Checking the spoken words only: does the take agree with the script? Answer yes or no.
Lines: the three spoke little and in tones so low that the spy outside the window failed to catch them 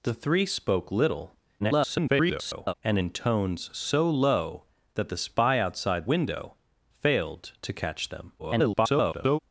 no